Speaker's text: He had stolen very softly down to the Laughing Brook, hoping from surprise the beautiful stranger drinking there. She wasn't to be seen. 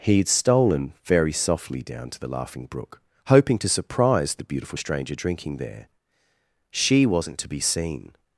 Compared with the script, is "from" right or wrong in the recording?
wrong